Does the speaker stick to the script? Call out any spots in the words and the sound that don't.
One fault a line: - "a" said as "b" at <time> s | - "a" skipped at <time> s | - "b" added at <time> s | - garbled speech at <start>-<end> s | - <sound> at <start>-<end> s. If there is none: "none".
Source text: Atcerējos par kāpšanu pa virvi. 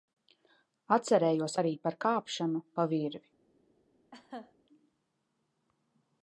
- "arī" added at 1.6 s
- laugh at 4.1-4.5 s